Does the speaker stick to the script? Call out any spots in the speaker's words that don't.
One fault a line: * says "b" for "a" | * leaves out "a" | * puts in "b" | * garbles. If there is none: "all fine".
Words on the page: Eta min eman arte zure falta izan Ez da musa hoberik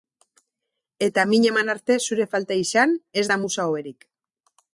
all fine